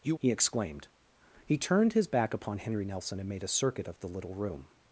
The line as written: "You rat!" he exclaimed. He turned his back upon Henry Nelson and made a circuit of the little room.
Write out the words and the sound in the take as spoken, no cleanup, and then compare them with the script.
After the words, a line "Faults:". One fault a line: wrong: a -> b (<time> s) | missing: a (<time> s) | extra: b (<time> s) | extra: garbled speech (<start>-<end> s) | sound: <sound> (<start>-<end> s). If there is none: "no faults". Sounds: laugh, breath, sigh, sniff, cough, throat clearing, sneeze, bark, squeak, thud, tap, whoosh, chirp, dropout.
"You!" he exclaimed. He turned his back upon Henry Nelson and made a circuit of the little room.
Faults:
missing: rat (0.1 s)